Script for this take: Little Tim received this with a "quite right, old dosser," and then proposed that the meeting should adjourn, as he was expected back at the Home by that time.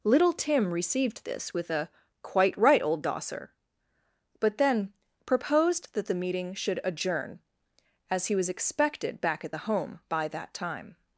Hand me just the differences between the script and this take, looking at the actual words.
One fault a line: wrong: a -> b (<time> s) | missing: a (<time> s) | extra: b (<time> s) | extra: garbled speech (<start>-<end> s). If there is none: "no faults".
wrong: and -> but (4.4 s)